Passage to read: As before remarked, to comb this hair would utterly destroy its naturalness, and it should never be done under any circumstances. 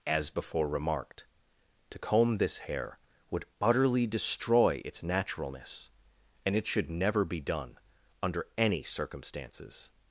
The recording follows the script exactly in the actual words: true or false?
true